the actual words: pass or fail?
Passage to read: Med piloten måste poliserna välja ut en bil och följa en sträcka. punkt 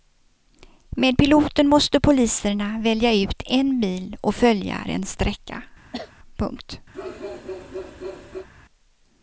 pass